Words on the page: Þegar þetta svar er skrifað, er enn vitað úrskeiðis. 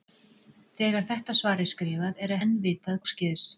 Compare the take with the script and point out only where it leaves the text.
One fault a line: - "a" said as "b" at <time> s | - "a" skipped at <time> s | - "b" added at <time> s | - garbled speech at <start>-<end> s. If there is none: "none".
none